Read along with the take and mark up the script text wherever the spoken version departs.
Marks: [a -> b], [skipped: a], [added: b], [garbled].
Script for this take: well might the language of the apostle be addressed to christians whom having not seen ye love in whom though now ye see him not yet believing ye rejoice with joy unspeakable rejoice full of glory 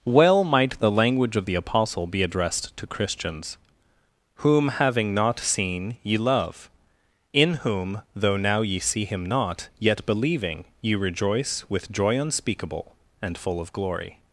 well might the language of the apostle be addressed to christians whom having not seen ye love in whom though now ye see him not yet believing ye rejoice with joy unspeakable [rejoice -> and] full of glory